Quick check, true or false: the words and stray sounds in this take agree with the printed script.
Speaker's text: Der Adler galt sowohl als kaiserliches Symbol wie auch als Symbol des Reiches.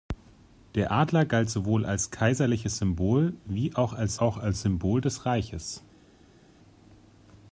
false